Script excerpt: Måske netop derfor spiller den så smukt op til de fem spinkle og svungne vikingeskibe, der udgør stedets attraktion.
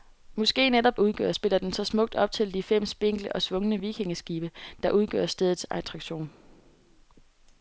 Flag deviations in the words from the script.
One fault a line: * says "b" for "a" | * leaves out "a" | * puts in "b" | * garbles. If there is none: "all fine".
* says "udgør" for "derfor"